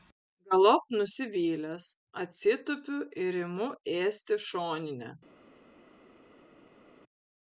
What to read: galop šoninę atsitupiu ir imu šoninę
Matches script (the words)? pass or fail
fail